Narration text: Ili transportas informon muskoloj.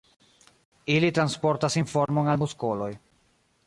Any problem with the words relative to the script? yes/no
yes